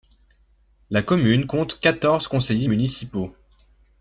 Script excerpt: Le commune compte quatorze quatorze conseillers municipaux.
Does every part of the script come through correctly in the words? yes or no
no